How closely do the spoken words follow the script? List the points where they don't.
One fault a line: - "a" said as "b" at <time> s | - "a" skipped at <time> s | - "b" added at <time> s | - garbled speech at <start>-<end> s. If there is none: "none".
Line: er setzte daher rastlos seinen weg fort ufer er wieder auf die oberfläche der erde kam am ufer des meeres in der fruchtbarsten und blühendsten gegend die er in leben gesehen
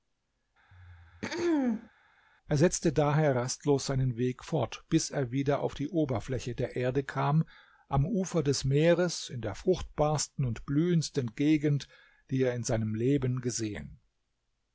- "ufer" said as "bis" at 4.9 s
- "seinem" added at 12.6 s